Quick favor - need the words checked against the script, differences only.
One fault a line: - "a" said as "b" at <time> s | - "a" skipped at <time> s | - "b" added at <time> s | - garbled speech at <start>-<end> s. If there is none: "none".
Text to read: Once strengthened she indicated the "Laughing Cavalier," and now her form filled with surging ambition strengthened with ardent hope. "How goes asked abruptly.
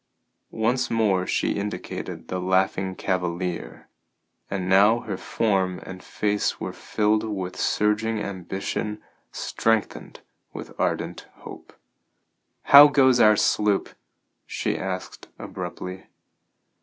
- "strengthened" said as "more" at 0.9 s
- "and face were" added at 5.8 s
- "our sloop she" added at 13.2 s